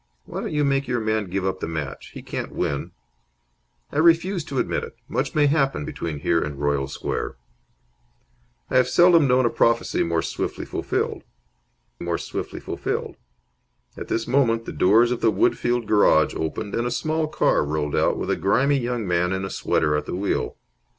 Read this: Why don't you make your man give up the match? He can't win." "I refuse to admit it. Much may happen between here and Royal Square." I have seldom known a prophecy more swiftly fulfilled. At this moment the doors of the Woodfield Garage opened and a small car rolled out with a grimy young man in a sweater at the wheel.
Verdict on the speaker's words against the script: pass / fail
fail